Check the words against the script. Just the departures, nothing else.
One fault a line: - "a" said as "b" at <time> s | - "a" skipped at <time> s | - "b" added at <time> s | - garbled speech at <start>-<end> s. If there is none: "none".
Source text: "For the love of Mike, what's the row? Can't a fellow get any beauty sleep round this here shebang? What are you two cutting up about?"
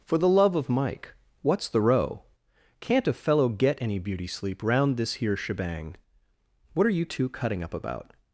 none